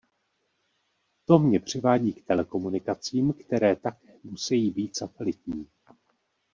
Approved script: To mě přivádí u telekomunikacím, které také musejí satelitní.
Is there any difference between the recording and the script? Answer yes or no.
yes